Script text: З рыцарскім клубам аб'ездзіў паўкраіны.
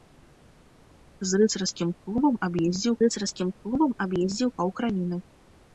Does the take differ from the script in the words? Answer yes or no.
yes